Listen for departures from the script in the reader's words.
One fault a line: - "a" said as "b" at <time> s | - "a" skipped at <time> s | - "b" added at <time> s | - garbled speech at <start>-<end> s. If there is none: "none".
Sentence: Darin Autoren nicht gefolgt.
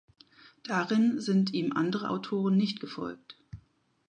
- "sind ihm andere" added at 1.2 s